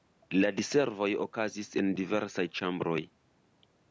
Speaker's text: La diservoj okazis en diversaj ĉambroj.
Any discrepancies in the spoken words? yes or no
no